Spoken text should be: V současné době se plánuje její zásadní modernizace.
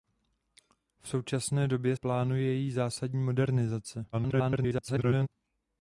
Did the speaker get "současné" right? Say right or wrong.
right